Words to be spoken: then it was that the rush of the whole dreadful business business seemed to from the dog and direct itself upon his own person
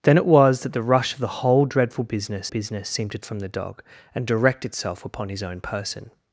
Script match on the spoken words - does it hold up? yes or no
yes